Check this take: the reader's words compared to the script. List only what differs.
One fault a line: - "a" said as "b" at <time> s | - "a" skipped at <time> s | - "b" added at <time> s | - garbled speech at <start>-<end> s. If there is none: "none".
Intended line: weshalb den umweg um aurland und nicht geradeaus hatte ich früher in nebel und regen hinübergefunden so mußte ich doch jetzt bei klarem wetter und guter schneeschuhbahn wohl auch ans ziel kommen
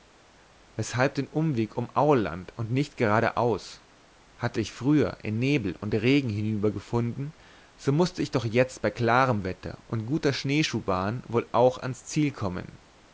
none